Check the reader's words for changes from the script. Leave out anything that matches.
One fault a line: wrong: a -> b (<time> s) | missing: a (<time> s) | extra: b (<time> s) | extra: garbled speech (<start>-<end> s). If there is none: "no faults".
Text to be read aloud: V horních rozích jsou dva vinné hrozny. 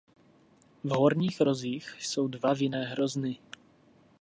no faults